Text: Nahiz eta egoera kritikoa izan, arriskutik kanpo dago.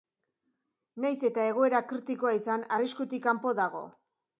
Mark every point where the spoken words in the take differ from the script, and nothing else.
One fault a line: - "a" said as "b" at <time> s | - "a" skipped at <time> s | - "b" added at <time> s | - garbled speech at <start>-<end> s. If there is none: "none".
none